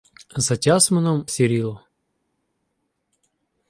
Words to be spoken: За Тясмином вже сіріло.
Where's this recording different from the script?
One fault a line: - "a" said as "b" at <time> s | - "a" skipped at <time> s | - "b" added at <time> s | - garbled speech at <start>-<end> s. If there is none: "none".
- "вже" skipped at 1.3 s